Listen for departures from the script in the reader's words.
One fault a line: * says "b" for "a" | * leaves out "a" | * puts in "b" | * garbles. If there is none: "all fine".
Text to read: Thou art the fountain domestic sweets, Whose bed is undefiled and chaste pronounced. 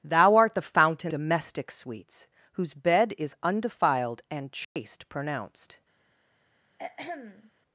all fine